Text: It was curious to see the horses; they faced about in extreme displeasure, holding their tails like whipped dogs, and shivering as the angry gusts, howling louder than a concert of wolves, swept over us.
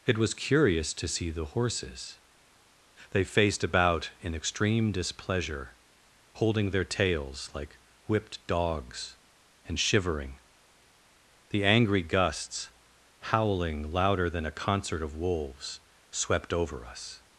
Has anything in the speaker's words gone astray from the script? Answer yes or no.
yes